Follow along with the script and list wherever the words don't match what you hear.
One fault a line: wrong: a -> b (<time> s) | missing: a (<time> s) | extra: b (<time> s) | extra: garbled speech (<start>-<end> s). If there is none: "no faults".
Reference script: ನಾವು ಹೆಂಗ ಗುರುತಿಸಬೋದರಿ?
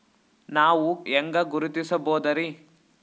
no faults